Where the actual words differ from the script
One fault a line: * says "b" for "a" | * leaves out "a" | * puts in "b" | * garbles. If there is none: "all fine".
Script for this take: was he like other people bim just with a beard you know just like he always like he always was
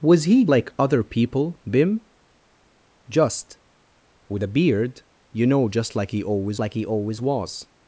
all fine